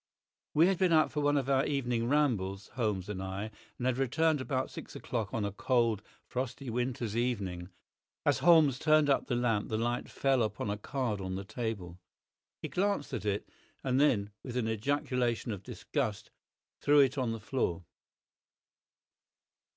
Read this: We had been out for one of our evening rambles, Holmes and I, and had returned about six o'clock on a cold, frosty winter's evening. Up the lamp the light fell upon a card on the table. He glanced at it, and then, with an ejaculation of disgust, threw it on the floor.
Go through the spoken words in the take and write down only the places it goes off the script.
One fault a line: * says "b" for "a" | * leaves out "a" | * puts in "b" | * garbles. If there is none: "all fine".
* puts in "As Holmes turned"